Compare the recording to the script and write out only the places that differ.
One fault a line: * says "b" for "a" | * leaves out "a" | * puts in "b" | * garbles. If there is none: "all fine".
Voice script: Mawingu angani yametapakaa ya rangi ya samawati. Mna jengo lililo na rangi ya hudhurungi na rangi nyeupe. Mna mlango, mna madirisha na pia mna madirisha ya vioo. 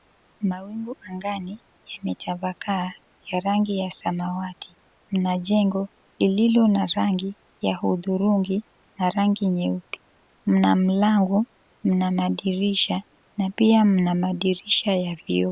all fine